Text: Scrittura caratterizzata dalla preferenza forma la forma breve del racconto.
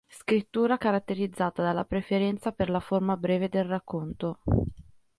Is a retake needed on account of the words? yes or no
yes